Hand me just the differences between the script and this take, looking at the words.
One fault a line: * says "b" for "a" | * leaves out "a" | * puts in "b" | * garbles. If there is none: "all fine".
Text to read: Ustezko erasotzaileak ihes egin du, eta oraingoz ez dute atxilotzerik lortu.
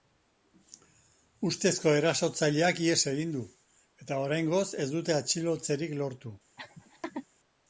all fine